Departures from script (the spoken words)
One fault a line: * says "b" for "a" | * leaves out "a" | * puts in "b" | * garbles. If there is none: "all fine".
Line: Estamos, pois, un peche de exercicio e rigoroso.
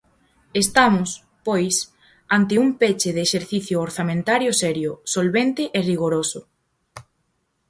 * puts in "ante"
* puts in "orzamentario serio solvente"